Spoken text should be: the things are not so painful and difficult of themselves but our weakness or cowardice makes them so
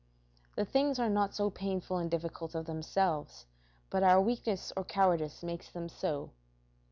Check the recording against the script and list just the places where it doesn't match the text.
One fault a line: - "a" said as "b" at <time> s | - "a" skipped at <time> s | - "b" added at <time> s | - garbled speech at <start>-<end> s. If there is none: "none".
none